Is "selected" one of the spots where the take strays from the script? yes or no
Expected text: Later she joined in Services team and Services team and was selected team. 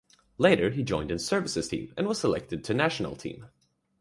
yes